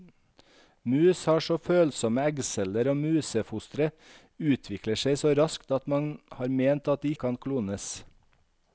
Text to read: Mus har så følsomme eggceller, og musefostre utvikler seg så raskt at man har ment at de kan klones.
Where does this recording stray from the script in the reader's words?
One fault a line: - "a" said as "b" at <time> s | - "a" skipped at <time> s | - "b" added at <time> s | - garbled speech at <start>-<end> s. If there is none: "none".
none